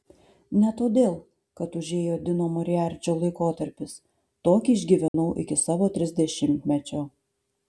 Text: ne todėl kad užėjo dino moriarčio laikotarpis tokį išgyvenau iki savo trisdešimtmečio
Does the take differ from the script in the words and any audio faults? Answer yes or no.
yes